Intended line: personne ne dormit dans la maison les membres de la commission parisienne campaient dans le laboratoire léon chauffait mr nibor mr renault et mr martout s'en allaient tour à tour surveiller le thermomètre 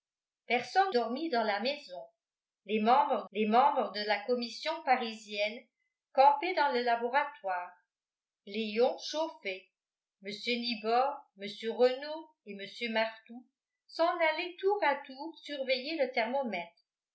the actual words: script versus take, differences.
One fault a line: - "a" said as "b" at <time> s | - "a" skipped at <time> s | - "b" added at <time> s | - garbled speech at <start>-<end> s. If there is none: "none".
- "ne" skipped at 0.9 s
- "les membres" added at 3.3 s